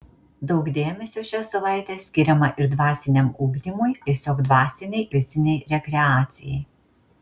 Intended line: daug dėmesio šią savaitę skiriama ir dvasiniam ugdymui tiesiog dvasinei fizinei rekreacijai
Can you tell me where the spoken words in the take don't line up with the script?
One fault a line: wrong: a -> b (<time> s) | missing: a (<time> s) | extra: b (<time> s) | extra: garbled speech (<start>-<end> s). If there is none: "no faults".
no faults